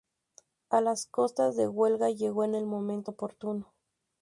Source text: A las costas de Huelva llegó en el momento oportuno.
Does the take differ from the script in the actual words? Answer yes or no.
no